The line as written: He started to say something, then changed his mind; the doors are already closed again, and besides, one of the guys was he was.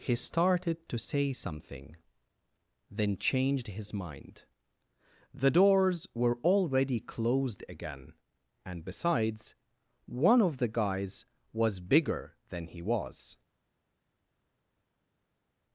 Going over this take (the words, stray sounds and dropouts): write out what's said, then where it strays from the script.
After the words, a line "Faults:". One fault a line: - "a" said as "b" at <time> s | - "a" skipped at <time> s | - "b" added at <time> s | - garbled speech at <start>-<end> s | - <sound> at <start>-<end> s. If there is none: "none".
He started to say something, then changed his mind; the doors were already closed again, and besides, one of the guys was bigger than he was.
Faults:
- "are" said as "were" at 6.1 s
- "bigger than" added at 11.9 s